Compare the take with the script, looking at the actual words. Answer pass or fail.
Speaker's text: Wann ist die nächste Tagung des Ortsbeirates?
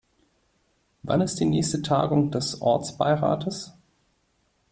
pass